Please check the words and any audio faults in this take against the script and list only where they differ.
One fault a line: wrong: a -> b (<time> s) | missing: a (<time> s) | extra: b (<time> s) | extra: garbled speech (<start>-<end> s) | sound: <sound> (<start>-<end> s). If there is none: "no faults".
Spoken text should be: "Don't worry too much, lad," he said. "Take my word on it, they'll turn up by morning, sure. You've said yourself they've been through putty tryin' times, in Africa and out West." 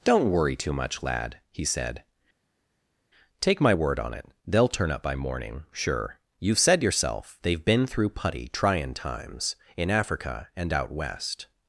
no faults